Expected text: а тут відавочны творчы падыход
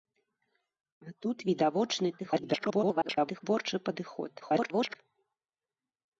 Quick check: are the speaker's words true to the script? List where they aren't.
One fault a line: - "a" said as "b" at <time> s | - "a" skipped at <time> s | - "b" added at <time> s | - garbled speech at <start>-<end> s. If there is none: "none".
- garbled speech at 2.2-3.4 s
- garbled speech at 4.4-5.0 s